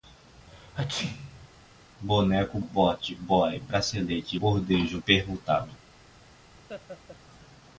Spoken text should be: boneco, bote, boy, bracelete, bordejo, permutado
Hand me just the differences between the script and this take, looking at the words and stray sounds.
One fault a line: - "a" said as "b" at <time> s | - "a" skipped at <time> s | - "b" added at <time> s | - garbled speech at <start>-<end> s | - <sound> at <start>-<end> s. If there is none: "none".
- sneeze at 0.5-1.5 s
- laugh at 6.7-7.2 s